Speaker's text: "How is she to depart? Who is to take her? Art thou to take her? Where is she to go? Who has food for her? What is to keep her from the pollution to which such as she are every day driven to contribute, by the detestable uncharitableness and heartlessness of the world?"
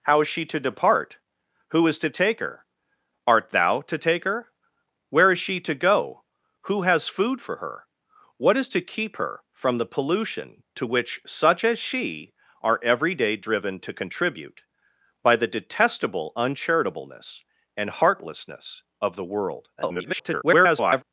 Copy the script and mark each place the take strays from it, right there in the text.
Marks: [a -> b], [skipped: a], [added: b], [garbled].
"How is she to depart? Who is to take her? Art thou to take her? Where is she to go? Who has food for her? What is to keep her from the pollution to which such as she are every day driven to contribute, by the detestable uncharitableness and heartlessness of the world?" [garbled]